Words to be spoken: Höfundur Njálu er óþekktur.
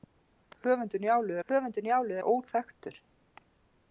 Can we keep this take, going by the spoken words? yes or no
no